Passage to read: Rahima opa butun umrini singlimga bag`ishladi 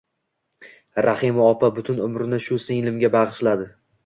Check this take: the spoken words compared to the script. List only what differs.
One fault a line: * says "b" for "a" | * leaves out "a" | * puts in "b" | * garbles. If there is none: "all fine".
* puts in "shu"